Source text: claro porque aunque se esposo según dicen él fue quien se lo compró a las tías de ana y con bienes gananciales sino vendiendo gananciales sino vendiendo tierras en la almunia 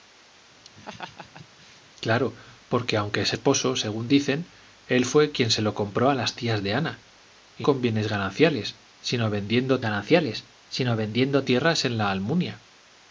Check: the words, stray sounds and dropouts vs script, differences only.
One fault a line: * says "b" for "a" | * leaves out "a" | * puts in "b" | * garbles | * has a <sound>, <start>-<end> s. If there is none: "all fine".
* has a laugh, 0.6-1.8 s